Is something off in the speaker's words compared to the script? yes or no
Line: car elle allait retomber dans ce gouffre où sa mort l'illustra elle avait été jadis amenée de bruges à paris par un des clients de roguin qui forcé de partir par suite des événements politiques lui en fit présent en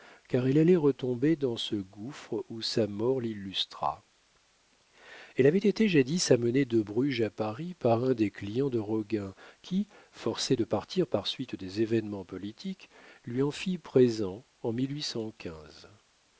no